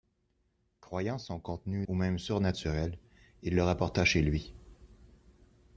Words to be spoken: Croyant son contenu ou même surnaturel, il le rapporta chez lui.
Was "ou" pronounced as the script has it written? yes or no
yes